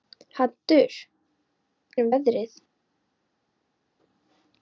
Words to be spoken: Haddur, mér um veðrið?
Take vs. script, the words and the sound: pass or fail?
pass